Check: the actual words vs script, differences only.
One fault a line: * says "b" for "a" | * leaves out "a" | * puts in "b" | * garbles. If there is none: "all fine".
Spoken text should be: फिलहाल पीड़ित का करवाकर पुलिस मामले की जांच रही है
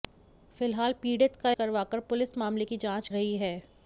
all fine